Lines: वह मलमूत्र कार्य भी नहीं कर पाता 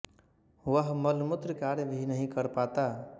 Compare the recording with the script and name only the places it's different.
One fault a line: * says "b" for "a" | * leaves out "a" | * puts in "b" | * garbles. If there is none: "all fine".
all fine